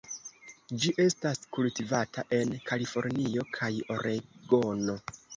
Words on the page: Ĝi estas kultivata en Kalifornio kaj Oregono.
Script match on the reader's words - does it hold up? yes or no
yes